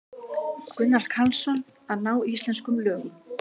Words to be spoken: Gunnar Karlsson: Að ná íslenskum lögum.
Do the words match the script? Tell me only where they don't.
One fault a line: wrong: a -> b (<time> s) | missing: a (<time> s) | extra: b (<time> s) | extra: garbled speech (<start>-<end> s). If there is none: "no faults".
no faults